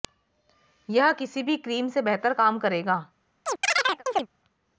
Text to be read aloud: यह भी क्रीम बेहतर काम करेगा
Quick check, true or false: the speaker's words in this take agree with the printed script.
false